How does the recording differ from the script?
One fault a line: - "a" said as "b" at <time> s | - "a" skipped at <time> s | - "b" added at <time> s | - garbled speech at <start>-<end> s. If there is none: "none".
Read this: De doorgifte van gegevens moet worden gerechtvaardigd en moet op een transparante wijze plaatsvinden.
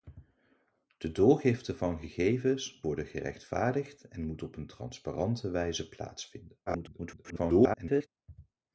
- "moet" skipped at 2.8 s
- garbled speech at 6.7-8.1 s